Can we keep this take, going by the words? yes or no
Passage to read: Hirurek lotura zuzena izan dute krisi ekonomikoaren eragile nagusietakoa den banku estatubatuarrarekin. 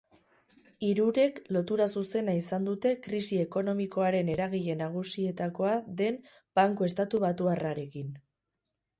yes